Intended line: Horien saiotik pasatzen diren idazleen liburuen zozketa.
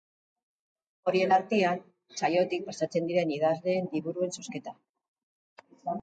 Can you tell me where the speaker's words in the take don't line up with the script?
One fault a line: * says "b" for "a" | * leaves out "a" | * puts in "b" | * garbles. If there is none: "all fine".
* puts in "artean"